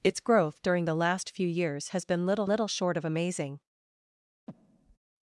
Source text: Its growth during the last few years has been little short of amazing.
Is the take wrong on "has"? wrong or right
right